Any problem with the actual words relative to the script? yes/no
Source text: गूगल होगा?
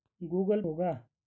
no